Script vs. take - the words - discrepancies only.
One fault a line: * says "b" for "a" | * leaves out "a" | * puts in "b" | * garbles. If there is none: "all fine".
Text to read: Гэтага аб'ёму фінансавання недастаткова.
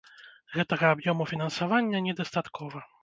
all fine